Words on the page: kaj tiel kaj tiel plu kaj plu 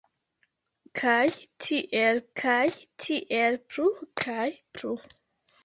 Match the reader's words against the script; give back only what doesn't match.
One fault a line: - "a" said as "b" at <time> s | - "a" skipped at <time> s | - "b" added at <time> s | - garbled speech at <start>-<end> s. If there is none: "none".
none